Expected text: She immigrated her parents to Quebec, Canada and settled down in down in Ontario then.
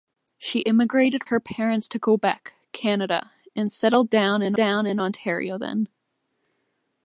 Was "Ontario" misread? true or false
false